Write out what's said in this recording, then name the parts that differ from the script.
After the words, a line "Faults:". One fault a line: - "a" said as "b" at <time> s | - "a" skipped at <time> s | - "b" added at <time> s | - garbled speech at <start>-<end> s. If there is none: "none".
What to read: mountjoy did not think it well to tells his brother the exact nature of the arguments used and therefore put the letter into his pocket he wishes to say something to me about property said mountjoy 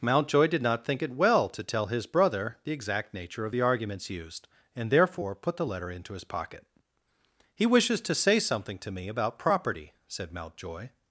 mountjoy did not think it well to tell his brother the exact nature of the arguments used and therefore put the letter into his pocket he wishes to say something to me about property said mountjoy
Faults:
- "tells" said as "tell" at 1.6 s